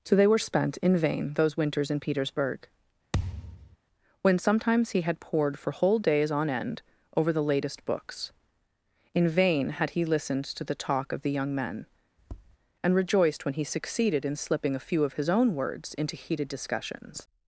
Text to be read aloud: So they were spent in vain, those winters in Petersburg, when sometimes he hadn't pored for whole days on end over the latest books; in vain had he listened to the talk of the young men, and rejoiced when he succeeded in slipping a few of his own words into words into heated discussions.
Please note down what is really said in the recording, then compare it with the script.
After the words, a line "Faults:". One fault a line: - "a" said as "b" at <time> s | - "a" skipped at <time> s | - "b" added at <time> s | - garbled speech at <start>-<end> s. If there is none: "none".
So they were spent in vain, those winters in Petersburg, when sometimes he had pored for whole days on end over the latest books; in vain had he listened to the talk of the young men, and rejoiced when he succeeded in slipping a few of his own words into heated discussions.
Faults:
- "hadn't" said as "had" at 5.0 s
- "words into" skipped at 16.2 s